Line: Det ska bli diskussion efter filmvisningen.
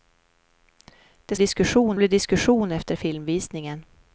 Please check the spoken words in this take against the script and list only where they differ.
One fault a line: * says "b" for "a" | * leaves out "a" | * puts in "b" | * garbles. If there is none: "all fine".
* says "diskussion" for "ska"